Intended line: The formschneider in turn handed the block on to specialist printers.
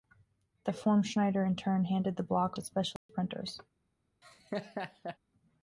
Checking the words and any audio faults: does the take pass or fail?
fail